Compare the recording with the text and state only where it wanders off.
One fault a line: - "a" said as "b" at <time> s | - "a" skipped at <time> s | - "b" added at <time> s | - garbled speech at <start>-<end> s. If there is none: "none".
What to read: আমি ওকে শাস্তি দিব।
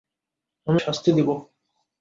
- "ওকে" skipped at 0.8 s